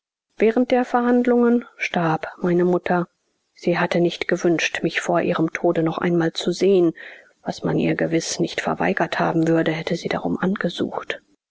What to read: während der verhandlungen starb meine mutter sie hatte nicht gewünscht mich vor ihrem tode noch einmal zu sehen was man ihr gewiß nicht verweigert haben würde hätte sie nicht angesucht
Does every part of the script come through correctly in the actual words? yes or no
no